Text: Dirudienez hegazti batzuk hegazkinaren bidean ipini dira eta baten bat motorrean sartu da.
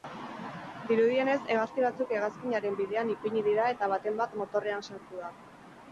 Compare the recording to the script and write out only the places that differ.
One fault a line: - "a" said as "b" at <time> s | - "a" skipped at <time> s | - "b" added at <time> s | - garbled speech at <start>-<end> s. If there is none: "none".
none